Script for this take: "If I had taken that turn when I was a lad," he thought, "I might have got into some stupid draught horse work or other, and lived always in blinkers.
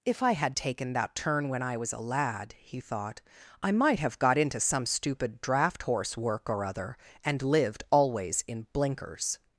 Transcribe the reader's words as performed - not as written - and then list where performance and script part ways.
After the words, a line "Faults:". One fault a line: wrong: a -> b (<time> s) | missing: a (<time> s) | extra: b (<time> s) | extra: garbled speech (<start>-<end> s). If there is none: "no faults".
"If I had taken that turn when I was a lad," he thought, "I might have got into some stupid draught horse work or other, and lived always in blinkers.
Faults:
no faults